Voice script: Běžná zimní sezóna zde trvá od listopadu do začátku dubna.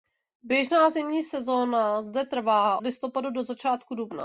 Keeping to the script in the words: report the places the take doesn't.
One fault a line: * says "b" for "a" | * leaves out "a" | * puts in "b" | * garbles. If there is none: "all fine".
* leaves out "od"